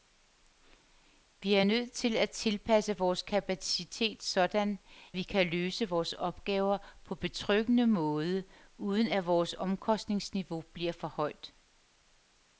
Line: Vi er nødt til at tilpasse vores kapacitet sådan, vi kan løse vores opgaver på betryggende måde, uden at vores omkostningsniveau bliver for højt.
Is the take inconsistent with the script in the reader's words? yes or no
no